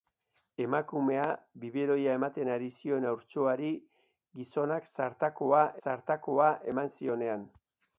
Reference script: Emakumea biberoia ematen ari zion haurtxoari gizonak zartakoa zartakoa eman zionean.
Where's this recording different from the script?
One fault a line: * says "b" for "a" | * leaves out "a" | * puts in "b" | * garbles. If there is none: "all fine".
all fine